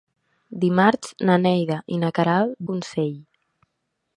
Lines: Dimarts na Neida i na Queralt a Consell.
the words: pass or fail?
pass